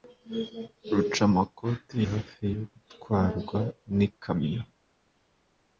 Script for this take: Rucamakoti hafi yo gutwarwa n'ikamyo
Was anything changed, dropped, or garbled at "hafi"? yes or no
no